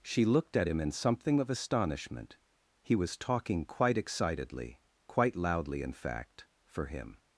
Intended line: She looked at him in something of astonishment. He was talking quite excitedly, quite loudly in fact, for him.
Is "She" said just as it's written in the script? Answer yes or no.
yes